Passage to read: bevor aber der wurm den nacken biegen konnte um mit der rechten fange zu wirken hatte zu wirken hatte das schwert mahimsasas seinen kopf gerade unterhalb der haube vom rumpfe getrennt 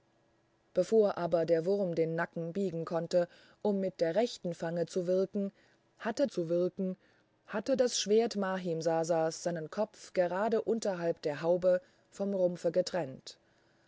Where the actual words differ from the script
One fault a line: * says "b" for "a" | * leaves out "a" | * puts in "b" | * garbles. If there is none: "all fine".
all fine